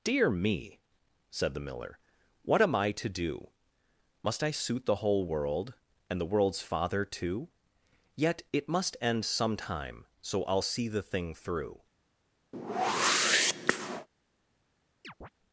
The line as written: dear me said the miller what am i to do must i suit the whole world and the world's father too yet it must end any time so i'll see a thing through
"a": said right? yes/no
no